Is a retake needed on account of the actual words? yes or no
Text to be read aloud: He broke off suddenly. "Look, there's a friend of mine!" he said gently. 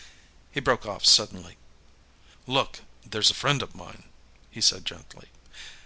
no